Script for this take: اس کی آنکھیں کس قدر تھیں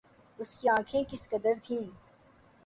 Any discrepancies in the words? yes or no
no